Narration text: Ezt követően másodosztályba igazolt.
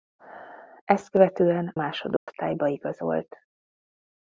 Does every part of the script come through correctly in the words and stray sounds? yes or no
no